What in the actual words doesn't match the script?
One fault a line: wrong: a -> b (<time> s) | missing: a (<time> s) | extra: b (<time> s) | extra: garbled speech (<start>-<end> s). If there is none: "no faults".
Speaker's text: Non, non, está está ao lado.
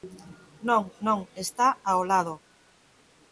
missing: está (1.7 s)